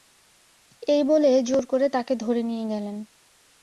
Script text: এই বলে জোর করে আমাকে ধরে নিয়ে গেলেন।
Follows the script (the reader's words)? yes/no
no